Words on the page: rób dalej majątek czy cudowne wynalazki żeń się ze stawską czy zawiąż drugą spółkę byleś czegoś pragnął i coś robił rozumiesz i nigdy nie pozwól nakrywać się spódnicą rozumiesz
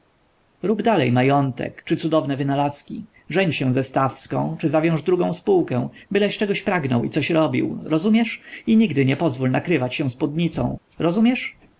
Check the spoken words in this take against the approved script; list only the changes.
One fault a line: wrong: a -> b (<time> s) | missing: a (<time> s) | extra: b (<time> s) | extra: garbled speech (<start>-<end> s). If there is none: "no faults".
no faults